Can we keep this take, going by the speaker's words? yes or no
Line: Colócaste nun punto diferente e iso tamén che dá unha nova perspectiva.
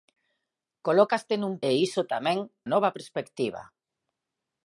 no